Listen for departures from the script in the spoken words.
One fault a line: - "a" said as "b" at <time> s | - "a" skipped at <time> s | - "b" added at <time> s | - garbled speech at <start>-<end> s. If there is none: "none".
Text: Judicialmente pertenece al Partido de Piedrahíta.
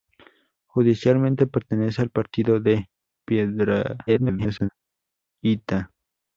- garbled speech at 4.1-4.7 s